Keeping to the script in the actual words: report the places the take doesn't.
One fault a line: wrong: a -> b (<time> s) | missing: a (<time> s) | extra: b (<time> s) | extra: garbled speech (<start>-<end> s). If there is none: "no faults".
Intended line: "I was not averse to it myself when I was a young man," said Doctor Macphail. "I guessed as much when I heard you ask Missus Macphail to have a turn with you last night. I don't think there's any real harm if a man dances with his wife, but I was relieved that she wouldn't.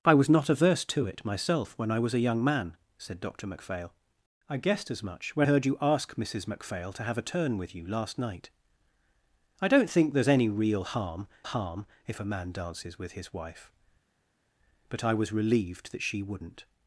missing: I (5.5 s)
extra: harm (11.4 s)